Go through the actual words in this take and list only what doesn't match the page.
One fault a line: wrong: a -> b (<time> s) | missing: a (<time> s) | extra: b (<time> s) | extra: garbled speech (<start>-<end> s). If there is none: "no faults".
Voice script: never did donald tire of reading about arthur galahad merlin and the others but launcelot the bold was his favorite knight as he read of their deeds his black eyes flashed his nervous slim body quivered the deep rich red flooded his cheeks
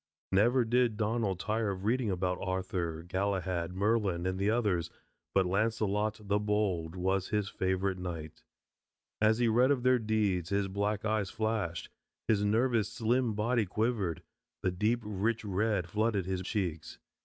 no faults